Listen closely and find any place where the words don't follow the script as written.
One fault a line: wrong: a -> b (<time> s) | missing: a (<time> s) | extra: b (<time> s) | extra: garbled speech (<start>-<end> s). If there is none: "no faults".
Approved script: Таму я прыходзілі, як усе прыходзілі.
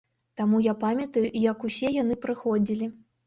wrong: прыходзілі -> памятаю (0.8 s)
extra: яны (2.0 s)